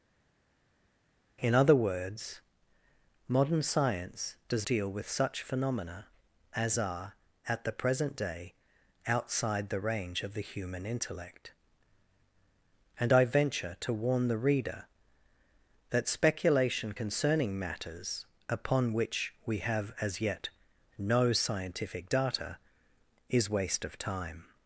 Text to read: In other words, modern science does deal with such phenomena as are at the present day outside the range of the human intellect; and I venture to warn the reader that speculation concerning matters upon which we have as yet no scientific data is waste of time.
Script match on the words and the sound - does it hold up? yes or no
yes